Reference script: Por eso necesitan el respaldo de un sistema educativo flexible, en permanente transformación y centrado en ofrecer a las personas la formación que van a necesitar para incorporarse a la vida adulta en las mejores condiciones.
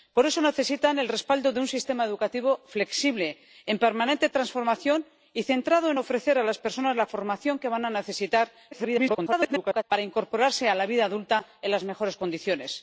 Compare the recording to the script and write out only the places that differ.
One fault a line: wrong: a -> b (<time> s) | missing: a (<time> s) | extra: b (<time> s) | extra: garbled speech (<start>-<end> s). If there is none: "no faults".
extra: garbled speech (8.7-9.8 s)